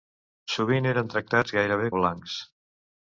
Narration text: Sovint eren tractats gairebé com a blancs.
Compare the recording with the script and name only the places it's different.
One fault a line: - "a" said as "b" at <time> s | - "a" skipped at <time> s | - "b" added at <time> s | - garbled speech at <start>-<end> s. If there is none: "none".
- "com" skipped at 1.9 s